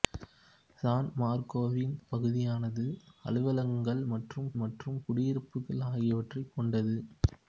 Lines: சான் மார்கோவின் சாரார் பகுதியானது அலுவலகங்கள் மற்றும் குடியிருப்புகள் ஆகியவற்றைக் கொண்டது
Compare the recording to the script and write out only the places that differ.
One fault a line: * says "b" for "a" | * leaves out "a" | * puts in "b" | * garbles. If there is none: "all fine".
* leaves out "சாரார்"
* puts in "மற்றும்"